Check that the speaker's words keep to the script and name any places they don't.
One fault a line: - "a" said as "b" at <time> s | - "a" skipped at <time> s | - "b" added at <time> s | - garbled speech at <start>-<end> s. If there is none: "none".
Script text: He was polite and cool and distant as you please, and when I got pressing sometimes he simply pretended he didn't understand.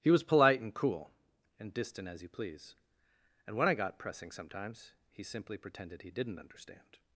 none